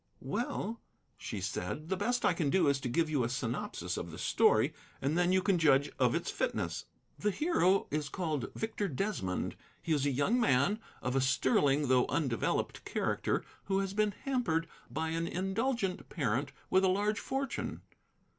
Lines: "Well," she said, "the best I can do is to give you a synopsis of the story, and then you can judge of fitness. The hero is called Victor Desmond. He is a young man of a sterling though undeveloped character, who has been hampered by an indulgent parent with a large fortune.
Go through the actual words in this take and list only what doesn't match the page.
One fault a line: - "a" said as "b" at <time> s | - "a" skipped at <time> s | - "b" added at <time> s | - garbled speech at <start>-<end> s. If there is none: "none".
- "its" added at 6.2 s